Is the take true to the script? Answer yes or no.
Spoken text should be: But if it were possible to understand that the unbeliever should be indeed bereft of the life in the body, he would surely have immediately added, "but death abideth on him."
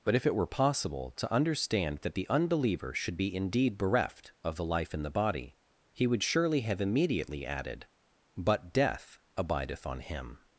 yes